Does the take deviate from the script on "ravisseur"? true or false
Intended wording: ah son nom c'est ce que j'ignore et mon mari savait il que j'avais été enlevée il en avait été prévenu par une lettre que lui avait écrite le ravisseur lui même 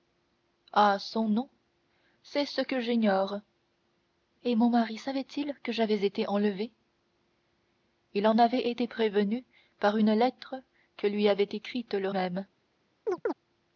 true